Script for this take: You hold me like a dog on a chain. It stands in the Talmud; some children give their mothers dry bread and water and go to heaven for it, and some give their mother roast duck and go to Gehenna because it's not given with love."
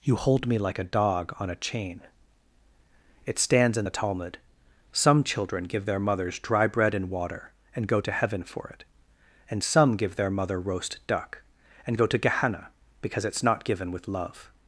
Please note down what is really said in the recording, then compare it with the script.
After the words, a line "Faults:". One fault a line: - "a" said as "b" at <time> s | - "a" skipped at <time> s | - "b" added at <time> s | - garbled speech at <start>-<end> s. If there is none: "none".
You hold me like a dog on a chain. It stands in the Talmud; some children give their mothers dry bread and water and go to heaven for it, and some give their mother roast duck and go to Gehenna because it's not given with love."
Faults:
none